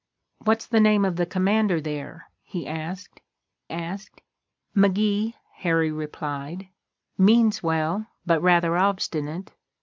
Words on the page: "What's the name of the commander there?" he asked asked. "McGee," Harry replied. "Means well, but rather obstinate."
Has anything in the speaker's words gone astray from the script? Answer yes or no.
no